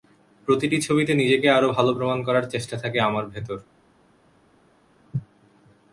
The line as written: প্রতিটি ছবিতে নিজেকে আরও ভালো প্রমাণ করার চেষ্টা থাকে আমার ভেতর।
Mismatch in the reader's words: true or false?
false